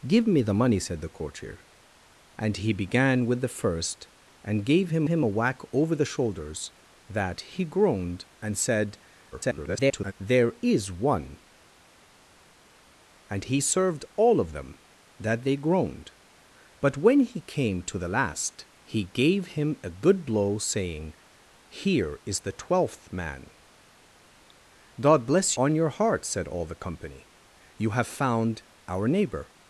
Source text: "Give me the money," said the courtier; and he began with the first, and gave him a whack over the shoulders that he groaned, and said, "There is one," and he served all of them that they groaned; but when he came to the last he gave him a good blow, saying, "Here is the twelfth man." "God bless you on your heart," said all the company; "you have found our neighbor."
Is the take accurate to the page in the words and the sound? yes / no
no